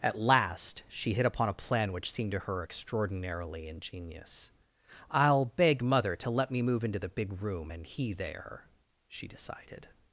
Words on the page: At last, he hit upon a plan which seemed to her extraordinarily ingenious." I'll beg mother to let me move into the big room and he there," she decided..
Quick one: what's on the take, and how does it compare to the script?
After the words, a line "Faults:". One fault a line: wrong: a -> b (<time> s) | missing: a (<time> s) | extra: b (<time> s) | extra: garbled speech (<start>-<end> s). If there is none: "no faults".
At last, she hit upon a plan which seemed to her extraordinarily ingenious." I'll beg mother to let me move into the big room and he there," she decided..
Faults:
wrong: he -> she (0.9 s)